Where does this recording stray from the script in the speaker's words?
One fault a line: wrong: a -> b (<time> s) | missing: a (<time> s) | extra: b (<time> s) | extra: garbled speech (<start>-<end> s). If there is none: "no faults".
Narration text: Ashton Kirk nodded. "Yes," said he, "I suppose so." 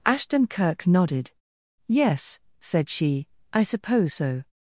wrong: he -> she (2.9 s)